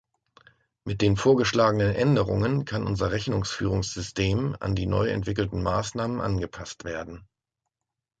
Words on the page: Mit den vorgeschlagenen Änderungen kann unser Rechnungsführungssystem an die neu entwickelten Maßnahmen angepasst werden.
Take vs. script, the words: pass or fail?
pass